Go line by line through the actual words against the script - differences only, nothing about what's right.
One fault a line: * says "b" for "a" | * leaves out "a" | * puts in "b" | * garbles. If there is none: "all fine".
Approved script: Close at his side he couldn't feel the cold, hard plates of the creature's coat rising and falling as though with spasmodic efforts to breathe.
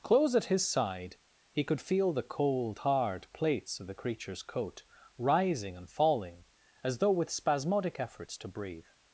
* says "could" for "couldn't"